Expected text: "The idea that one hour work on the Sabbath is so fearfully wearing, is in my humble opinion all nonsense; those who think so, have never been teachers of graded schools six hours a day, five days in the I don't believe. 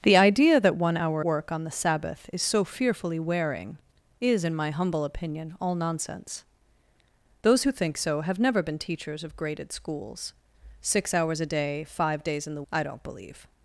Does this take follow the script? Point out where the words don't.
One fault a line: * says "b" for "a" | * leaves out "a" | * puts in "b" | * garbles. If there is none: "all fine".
all fine